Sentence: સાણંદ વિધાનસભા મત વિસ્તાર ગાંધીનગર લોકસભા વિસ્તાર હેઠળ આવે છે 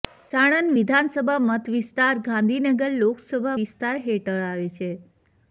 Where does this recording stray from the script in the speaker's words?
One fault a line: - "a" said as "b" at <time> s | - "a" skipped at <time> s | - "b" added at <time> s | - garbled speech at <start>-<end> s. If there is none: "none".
none